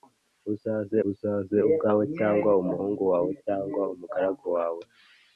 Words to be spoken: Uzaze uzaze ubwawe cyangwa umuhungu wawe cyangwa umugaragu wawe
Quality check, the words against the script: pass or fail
pass